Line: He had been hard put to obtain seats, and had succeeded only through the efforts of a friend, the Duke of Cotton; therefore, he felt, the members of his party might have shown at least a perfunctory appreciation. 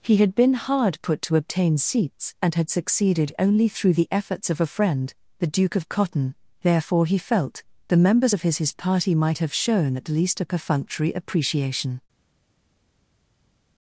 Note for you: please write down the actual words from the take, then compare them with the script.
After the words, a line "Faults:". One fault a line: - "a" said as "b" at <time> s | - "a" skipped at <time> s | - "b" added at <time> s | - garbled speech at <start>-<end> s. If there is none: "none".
He had been hard put to obtain seats, and had succeeded only through the efforts of a friend, the Duke of Cotton; therefore, he felt, the members of his his party might have shown at least a perfunctory appreciation.
Faults:
- "his" added at 8.6 s